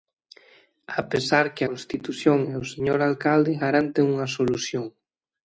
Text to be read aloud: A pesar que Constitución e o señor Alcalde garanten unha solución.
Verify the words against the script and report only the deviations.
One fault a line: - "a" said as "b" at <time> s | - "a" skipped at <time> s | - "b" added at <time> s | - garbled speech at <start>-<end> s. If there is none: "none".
none